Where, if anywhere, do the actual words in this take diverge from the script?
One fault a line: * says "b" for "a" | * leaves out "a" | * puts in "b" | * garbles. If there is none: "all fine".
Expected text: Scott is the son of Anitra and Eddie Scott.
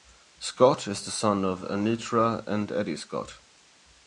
all fine